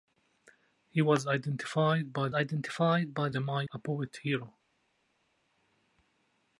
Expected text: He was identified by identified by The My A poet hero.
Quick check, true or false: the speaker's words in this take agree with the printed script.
true